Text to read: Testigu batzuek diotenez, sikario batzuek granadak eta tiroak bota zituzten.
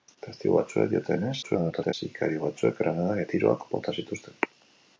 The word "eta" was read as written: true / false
false